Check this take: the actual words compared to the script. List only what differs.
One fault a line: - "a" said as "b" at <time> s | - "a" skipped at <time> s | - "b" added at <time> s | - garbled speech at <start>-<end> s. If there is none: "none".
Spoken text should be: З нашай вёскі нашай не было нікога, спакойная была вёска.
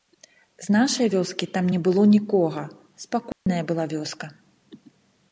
- "нашай" said as "там" at 1.6 s